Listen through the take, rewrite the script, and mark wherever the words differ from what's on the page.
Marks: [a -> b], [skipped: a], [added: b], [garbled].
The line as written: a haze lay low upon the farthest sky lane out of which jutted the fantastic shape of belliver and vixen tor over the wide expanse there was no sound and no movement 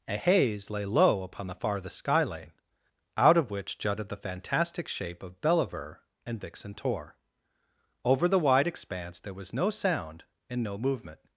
a haze lay low upon the farthest sky lane out of which jutted the fantastic shape of belliver and vixen tor over the wide expanse there was no sound and no movement